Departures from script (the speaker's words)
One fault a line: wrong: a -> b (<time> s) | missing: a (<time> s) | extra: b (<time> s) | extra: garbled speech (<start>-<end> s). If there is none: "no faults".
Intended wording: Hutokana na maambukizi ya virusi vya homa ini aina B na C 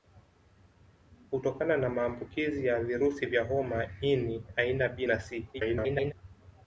extra: garbled speech (5.5-6.1 s)